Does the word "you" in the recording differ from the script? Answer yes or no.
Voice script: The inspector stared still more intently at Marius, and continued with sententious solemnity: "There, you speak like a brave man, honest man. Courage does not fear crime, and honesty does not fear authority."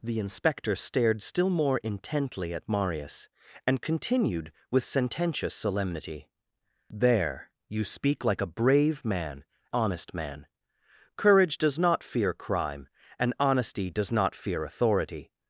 no